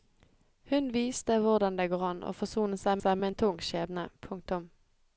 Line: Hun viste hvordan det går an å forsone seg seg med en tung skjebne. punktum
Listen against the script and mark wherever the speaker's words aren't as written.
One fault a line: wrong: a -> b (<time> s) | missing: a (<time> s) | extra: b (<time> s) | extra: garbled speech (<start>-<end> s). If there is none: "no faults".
no faults